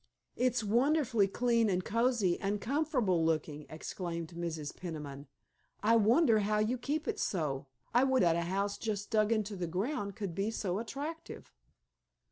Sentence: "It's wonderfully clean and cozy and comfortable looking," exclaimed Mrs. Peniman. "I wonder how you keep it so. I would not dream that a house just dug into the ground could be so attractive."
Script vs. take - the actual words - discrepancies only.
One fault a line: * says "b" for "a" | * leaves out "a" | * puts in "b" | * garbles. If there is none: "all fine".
* leaves out "not dream"